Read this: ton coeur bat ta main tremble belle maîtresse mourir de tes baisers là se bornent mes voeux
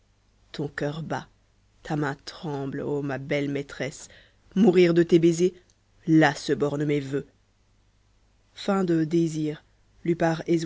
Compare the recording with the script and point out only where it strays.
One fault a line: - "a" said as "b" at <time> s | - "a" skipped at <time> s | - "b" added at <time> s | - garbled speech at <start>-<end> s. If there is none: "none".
- "ô ma" added at 2.8 s